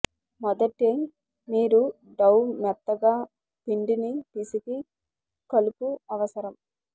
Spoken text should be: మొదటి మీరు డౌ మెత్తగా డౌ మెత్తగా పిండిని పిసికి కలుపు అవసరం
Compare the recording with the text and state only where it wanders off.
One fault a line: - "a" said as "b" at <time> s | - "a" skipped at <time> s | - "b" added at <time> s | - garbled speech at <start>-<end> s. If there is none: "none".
- "డౌ మెత్తగా" skipped at 3.1 s